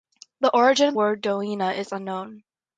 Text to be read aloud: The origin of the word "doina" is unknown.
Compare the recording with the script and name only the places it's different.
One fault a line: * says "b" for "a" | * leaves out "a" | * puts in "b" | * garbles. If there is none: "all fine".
* leaves out "the"